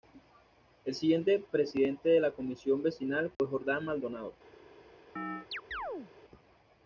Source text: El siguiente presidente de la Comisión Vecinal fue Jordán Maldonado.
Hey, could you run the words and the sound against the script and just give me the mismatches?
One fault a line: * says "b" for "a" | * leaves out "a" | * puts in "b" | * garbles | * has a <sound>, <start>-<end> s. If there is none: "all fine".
* has a dropout, 3.3-3.4 s
* has a chirp, 5.2-6.1 s